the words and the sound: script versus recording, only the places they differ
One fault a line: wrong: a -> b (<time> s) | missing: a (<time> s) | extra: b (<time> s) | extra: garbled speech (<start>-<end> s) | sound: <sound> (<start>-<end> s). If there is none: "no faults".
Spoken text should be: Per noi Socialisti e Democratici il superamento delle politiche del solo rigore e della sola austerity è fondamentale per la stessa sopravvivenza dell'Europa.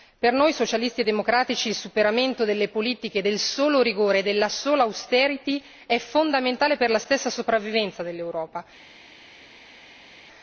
no faults